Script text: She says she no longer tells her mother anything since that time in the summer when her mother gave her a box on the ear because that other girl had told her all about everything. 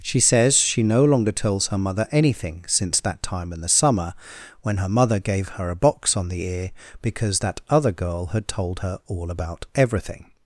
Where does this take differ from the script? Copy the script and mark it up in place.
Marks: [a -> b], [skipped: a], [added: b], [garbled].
She says she no longer tells her mother anything since that time in the summer when her mother gave her a box on the ear because that other girl had told her all about everything.